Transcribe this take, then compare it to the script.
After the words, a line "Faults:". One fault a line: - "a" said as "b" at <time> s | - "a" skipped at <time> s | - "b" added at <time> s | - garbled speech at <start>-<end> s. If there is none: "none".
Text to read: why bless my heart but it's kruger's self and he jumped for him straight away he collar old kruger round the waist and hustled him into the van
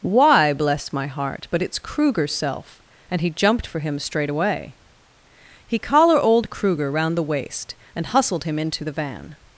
why bless my heart but it's kruger's self and he jumped for him straight away he collar old kruger round the waist and hustled him into the van
Faults:
none